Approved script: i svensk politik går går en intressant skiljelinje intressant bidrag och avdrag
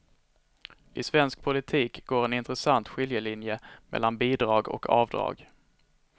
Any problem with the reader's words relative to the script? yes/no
yes